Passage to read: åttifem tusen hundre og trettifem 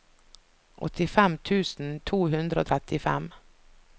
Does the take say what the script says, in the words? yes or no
no